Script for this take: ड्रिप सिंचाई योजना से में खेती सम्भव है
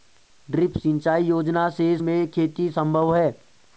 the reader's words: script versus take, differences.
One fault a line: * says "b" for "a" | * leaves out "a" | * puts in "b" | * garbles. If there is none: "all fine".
all fine